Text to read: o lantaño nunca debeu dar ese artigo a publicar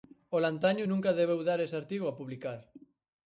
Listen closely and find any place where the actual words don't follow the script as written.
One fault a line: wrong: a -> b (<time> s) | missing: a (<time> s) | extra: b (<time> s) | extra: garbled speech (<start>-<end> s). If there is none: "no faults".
no faults